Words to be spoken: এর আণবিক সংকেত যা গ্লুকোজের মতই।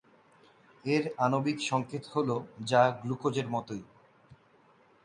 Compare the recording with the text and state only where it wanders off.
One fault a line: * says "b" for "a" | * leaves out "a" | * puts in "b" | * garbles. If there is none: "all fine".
* puts in "হল"